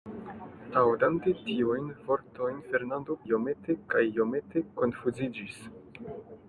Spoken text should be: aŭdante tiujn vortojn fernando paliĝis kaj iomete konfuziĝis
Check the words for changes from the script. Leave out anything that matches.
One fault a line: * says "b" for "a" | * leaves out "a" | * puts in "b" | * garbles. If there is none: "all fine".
* says "iomete" for "paliĝis"